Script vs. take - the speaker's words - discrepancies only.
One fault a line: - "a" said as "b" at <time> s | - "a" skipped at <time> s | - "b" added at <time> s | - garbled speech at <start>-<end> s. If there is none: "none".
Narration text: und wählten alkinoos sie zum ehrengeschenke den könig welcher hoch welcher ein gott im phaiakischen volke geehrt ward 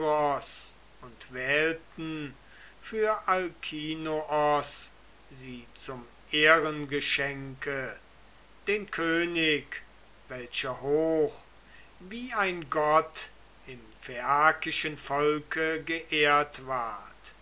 - "für" added at 2.8 s
- "welcher" said as "wie" at 12.0 s